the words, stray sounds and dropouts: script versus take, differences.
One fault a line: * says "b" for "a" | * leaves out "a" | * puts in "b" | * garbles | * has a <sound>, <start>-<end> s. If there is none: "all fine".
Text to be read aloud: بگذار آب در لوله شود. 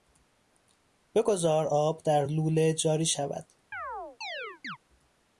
* puts in "جاری"
* has a chirp, 3.7-4.8 s